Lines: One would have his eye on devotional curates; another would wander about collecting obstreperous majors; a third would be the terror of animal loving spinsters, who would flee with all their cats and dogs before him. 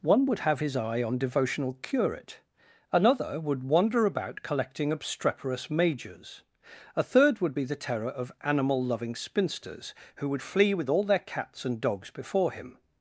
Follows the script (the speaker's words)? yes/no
no